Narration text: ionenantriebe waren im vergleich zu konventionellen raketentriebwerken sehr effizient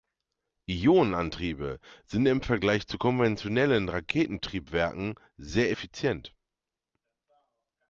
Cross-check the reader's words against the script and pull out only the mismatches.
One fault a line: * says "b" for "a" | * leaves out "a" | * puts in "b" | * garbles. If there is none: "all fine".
* says "sind" for "waren"